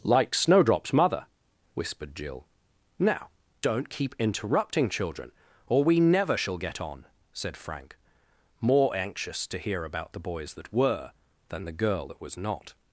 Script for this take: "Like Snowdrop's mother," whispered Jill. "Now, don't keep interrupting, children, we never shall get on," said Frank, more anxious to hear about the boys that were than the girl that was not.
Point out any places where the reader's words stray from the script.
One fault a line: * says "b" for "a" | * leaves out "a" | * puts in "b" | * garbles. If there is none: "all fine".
* puts in "or"